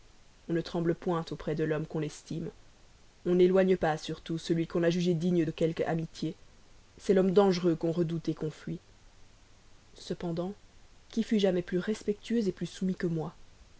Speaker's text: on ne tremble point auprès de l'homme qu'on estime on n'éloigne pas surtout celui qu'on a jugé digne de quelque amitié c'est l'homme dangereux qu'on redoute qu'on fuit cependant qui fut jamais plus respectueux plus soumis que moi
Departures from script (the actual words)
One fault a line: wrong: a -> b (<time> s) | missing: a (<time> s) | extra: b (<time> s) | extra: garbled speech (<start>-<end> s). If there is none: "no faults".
no faults